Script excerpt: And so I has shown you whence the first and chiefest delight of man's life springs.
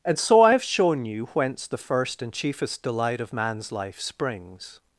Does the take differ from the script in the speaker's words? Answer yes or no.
yes